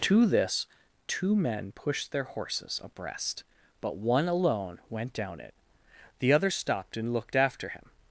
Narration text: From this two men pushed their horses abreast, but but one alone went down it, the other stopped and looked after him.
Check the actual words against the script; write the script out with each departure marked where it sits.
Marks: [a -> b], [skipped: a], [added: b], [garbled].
[From -> To] this two men pushed their horses abreast, but [skipped: but] one alone went down it, the other stopped and looked after him.